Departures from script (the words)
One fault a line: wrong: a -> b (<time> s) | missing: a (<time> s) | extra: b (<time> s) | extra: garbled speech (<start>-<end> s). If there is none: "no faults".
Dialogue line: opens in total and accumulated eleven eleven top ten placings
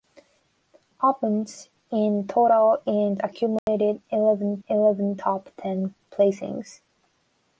no faults